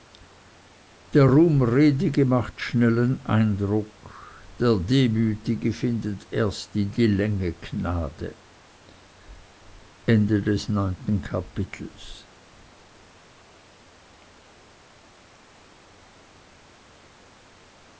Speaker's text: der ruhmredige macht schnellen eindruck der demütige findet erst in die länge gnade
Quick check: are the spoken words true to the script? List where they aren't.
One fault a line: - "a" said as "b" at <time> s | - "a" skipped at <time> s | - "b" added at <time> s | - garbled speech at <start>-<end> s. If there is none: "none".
none